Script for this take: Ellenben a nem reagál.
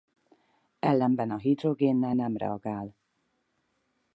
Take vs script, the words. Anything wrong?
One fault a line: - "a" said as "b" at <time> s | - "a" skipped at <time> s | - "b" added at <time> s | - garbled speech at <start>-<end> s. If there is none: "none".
- "hidrogénnel" added at 1.4 s